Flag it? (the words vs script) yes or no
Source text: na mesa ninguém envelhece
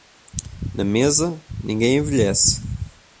no